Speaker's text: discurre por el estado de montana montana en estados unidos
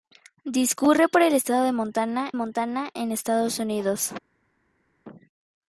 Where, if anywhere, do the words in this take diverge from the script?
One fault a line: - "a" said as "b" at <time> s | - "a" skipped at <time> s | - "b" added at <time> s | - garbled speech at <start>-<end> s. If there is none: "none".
none